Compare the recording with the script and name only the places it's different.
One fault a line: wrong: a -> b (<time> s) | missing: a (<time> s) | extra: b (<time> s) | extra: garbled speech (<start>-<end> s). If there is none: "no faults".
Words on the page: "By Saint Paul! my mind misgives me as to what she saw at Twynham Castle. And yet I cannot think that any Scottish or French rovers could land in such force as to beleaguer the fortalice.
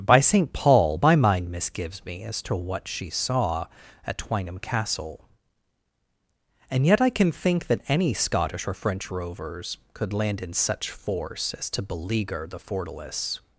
wrong: cannot -> can (7.1 s)